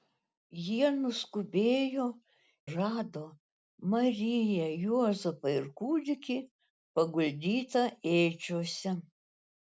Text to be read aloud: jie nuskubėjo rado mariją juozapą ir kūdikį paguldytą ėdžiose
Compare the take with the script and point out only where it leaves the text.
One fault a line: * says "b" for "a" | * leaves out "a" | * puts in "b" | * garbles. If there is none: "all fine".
all fine